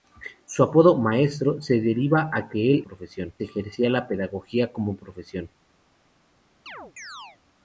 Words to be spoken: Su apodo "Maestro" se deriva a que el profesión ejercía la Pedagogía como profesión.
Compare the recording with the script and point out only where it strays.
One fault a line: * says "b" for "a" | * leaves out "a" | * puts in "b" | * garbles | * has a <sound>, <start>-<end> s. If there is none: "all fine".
* has a chirp, 6.7-7.4 s